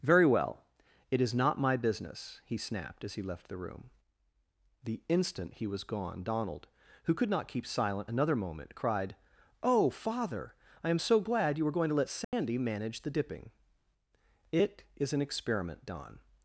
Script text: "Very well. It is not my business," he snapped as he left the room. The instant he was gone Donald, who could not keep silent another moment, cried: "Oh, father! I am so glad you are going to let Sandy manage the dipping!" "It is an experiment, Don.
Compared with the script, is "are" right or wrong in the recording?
wrong